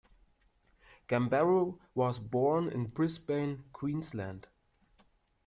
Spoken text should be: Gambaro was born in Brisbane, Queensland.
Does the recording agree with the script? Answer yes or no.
yes